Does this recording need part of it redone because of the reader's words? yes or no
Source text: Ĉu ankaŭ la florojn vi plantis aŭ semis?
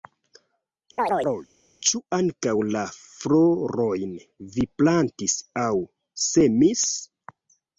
no